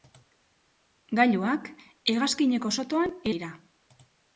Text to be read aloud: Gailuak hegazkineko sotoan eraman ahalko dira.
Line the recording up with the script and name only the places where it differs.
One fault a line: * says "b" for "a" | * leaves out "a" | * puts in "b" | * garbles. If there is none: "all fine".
* leaves out "eraman ahalko"